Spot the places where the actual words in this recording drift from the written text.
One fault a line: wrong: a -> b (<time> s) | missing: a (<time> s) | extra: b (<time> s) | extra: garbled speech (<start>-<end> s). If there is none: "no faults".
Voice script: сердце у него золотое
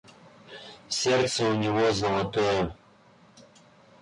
no faults